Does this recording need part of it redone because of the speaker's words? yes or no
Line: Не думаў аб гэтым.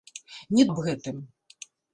yes